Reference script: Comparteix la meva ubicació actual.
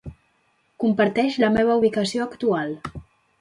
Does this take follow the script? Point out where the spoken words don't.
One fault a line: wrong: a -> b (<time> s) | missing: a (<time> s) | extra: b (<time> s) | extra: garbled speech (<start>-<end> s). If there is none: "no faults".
no faults